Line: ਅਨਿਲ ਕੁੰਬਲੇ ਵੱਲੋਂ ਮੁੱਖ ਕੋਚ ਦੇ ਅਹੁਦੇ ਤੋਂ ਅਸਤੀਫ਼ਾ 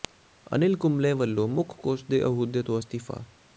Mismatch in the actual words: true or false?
false